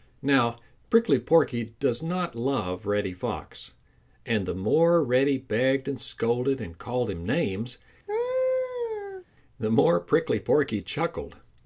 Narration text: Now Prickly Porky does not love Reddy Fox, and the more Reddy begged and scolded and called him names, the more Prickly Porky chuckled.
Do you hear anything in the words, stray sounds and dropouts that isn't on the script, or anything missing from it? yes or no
yes